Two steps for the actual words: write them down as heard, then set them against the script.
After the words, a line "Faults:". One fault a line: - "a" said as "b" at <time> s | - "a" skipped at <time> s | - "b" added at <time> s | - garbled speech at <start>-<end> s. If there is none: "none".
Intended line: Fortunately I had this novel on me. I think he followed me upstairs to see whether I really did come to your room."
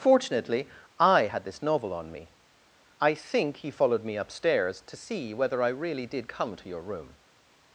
Fortunately I had this novel on me. I think he followed me upstairs to see whether I really did come to your room."
Faults:
none